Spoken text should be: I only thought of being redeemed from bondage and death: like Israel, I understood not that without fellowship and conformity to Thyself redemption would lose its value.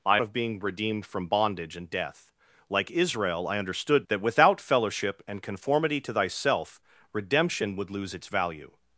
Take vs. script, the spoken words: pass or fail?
fail